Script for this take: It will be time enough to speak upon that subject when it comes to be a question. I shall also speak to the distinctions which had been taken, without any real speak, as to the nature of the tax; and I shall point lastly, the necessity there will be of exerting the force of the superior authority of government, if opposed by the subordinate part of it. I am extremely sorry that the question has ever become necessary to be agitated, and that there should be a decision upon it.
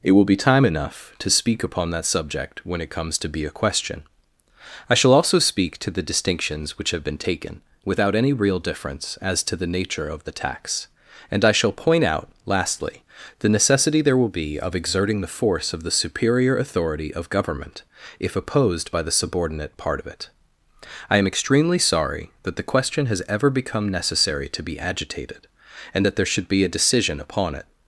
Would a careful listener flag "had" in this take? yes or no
yes